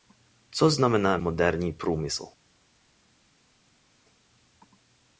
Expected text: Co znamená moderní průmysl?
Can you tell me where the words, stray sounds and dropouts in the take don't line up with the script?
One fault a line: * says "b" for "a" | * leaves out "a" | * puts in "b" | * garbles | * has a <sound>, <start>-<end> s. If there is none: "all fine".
all fine